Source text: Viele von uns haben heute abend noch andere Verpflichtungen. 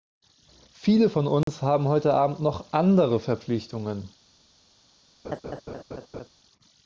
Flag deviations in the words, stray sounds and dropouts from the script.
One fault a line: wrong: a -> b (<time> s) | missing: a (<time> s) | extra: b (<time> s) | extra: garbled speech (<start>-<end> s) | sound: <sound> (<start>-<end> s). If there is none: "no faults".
sound: dropout (1.4-1.5 s)
sound: laugh (5.2-6.3 s)